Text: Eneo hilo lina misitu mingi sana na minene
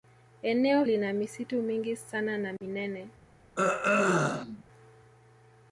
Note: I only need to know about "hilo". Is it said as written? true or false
false